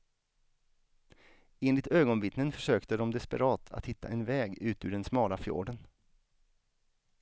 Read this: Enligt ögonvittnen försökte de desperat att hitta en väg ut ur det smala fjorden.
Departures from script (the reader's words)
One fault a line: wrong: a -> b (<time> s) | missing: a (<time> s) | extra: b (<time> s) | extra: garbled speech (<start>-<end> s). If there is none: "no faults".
wrong: det -> den (4.9 s)